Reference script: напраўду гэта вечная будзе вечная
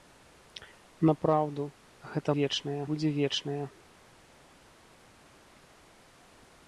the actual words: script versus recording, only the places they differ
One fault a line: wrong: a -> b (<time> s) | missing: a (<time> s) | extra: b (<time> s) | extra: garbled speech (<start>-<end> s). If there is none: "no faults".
no faults